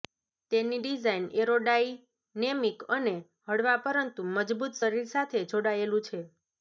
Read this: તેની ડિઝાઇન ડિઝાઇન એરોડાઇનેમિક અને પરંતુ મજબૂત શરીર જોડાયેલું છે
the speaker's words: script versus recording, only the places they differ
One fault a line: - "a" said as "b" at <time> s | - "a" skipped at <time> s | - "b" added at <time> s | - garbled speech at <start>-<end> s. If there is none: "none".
- "ડિઝાઇન" skipped at 1.3 s
- "હળવા" added at 3.5 s
- "સાથે" added at 5.1 s